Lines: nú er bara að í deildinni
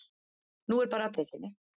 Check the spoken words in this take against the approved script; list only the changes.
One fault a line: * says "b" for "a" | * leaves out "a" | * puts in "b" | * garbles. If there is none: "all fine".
all fine